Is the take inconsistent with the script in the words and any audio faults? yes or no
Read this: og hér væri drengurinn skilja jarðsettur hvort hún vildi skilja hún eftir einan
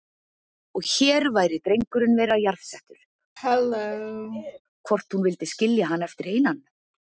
yes